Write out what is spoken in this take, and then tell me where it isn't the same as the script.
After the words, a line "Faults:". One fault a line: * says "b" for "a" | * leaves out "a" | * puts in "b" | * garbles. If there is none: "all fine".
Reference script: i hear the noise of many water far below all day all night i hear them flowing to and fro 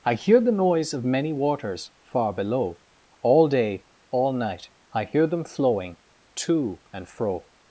i hear the noise of many waters far below all day all night i hear them flowing to and fro
Faults:
* says "waters" for "water"